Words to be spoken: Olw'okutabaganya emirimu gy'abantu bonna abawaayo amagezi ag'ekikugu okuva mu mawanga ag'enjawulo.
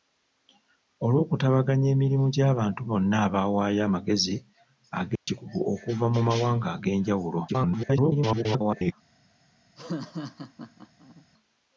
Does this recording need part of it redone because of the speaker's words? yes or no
yes